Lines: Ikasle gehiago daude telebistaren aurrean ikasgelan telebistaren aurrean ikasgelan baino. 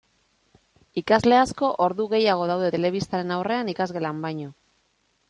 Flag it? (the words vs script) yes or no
yes